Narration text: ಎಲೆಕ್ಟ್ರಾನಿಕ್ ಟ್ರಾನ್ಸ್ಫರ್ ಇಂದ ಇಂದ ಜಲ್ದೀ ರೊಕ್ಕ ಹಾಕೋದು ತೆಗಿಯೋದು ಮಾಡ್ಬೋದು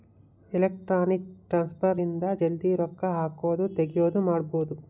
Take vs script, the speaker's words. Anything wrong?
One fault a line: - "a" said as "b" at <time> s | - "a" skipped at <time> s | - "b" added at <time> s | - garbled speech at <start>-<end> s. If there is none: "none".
- "ಇಂದ" skipped at 2.2 s